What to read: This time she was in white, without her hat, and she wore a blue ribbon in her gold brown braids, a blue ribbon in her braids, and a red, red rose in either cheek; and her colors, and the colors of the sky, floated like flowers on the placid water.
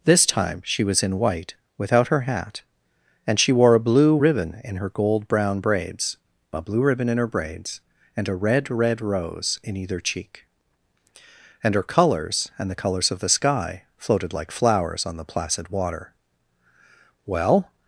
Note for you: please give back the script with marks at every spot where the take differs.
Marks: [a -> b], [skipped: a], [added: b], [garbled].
This time she was in white, without her hat, and she wore a blue ribbon in her gold brown braids, a blue ribbon in her braids, and a red, red rose in either cheek; and her colors, and the colors of the sky, floated like flowers on the placid water. [added: Well]